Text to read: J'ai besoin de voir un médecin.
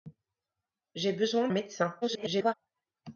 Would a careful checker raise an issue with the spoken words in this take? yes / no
yes